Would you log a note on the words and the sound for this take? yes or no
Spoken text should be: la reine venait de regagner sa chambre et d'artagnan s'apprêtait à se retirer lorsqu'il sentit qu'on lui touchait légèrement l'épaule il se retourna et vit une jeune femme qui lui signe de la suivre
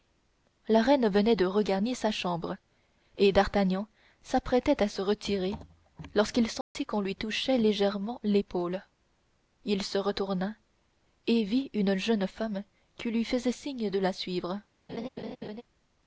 yes